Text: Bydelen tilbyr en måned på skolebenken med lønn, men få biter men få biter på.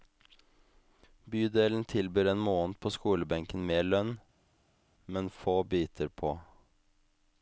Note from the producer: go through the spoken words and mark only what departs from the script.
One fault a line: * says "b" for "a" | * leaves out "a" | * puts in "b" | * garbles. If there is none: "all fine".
* leaves out "men få biter"